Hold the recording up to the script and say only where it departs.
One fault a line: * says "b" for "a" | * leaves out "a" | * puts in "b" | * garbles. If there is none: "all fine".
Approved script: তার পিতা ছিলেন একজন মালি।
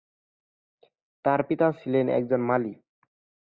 all fine